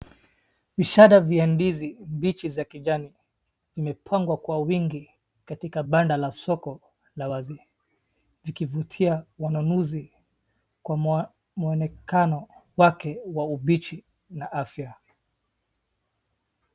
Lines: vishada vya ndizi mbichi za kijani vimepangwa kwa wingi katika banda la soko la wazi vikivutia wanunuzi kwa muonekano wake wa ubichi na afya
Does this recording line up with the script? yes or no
yes